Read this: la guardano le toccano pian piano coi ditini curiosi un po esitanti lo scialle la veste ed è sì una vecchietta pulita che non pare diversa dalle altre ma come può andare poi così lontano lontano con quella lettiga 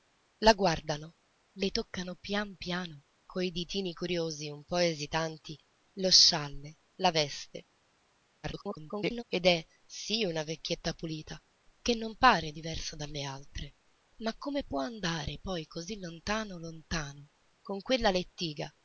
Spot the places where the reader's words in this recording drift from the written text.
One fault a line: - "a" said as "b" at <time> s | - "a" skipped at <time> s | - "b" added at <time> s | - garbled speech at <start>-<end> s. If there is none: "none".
- garbled speech at 8.4-9.2 s